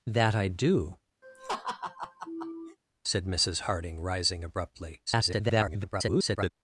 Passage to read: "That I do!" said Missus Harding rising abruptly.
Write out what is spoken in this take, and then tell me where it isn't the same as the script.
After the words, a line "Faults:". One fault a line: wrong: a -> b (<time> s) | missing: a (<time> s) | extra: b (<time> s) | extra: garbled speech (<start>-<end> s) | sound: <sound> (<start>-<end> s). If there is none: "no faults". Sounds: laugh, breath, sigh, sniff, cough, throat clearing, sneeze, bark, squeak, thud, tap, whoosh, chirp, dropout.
"That I do!" said Missus Harding rising abruptly. [garbled]
Faults:
sound: laugh (1.2-2.8 s)
extra: garbled speech (5.1-6.5 s)